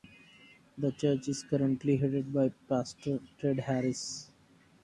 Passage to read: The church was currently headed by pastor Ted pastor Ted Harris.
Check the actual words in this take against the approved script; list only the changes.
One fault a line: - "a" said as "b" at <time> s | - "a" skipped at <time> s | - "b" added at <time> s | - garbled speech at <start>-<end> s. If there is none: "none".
- "was" said as "is" at 1.3 s
- "pastor Ted" skipped at 3.6 s